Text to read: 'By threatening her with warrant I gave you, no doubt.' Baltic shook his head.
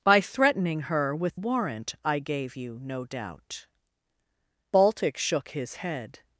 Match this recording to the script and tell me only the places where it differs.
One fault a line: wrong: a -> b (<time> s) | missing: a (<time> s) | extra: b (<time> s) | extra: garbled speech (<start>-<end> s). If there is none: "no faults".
no faults